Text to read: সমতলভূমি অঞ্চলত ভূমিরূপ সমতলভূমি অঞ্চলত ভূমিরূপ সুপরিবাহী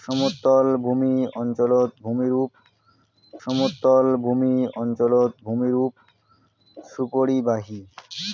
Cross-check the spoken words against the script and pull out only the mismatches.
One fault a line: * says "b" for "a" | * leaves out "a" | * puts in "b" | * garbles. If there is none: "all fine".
all fine